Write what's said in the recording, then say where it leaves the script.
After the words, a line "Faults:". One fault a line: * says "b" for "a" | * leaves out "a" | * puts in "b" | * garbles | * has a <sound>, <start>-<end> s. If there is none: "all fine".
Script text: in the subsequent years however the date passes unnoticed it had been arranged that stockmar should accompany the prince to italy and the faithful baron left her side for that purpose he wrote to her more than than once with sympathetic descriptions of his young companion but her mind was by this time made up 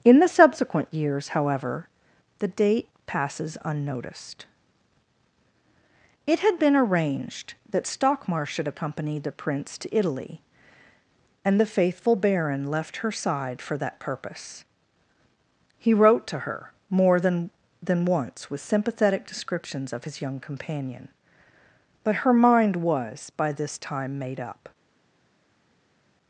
in the subsequent years however the date passes unnoticed it had been arranged that stockmar should accompany the prince to italy and the faithful baron left her side for that purpose he wrote to her more than than once with sympathetic descriptions of his young companion but her mind was by this time made up
Faults:
all fine